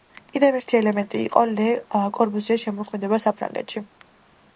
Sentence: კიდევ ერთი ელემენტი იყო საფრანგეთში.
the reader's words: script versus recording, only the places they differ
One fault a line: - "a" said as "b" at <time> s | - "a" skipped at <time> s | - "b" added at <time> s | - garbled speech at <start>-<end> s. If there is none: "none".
- "ლე კორბუზიეს შემოქმედება" added at 1.5 s